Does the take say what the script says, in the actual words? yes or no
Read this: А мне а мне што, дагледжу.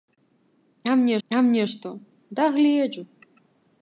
yes